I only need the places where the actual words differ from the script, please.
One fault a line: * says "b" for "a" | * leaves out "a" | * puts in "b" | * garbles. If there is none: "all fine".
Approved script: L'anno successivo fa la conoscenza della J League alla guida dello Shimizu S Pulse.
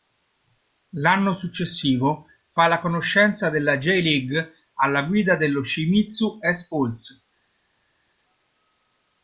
all fine